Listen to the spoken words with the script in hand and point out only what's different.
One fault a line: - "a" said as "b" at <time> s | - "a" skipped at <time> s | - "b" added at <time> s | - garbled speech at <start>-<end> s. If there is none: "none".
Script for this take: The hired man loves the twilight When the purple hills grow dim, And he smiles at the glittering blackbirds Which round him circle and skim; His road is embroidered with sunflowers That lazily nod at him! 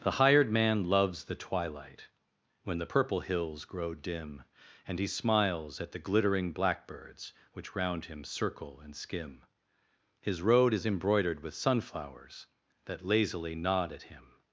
none